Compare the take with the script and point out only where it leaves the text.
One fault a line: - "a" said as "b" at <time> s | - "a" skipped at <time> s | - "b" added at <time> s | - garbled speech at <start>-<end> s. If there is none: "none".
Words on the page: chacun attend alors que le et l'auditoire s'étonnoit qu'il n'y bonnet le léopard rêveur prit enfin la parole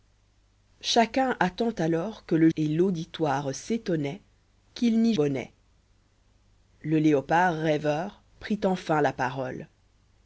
none